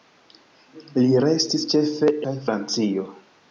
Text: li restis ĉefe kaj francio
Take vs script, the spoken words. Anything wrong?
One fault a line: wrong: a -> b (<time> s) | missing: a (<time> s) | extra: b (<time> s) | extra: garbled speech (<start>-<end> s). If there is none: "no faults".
no faults